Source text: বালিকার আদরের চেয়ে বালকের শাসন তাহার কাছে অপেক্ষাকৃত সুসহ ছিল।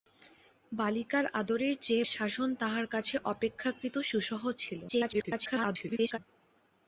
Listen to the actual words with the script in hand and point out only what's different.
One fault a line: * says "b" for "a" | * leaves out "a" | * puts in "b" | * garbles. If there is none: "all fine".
* leaves out "বালকের"
* garbles